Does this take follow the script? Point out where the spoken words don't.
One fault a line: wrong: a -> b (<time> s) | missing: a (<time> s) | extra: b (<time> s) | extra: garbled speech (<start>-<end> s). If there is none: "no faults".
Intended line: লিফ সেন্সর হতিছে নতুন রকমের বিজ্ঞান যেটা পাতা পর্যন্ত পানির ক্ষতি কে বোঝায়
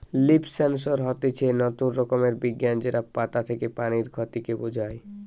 wrong: পর্যন্ত -> থেকে (3.5 s)